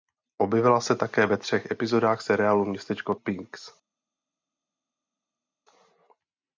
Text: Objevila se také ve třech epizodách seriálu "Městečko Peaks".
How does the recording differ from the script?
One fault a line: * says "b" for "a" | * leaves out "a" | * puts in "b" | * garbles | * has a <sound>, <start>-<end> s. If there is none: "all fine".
all fine